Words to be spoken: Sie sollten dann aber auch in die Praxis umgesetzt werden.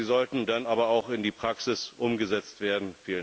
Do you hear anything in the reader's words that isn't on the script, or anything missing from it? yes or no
no